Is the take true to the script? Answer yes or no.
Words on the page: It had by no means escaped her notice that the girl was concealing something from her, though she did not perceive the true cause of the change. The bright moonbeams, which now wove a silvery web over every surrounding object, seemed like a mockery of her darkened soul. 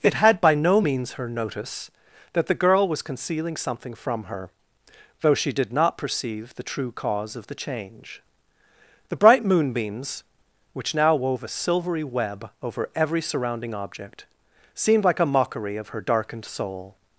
no